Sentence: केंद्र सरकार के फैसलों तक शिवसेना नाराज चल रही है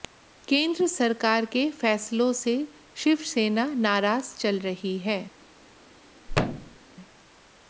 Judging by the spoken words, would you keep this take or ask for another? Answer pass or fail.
fail